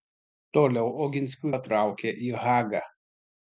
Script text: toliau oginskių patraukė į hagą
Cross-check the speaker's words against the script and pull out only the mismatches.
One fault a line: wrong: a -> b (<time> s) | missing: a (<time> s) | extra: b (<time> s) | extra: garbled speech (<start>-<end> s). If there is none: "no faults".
no faults